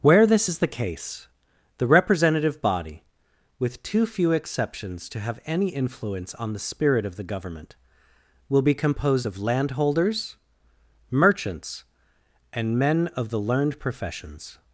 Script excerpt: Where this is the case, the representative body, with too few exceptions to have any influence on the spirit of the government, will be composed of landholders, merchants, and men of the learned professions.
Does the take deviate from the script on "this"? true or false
false